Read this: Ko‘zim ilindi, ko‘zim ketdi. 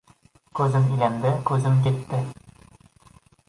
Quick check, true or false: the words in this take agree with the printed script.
true